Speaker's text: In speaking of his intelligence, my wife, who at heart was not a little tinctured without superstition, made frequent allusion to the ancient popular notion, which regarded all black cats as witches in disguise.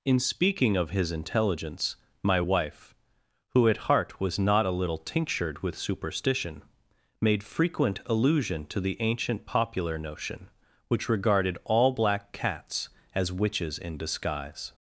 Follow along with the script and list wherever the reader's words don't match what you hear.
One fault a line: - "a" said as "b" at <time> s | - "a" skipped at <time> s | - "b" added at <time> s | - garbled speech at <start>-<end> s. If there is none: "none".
- "without" said as "with" at 5.6 s